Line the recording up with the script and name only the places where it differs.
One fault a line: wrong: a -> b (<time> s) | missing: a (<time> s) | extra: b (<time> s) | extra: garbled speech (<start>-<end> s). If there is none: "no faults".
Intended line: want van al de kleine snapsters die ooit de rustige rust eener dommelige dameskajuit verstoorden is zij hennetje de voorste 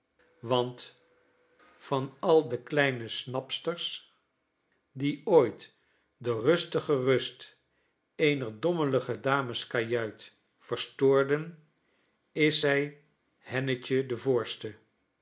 no faults